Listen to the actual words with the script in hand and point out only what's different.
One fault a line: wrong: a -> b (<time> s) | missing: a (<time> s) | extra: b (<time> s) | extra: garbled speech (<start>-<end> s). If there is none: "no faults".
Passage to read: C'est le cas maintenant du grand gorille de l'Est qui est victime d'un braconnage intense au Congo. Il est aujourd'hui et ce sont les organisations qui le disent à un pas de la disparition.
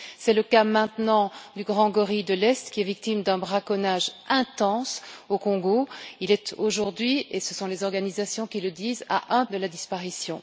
missing: pas (9.5 s)